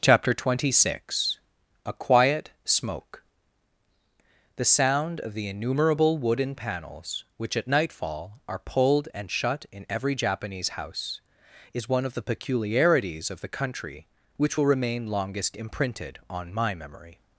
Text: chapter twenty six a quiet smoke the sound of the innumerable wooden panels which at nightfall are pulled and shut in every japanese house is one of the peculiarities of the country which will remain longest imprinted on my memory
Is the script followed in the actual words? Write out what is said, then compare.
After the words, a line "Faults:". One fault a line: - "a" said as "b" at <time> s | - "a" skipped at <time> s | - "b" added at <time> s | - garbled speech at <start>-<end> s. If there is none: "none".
chapter twenty six a quiet smoke the sound of the innumerable wooden panels which at nightfall are pulled and shut in every japanese house is one of the peculiarities of the country which will remain longest imprinted on my memory
Faults:
none